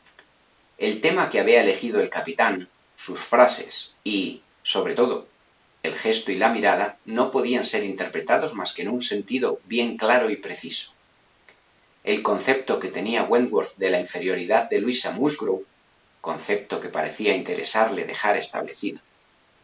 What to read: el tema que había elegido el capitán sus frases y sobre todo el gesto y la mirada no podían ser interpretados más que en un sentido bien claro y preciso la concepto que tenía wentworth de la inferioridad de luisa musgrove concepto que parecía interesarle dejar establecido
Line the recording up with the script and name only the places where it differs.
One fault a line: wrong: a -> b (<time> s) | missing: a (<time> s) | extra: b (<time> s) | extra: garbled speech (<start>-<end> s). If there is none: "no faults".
wrong: la -> el (12.0 s)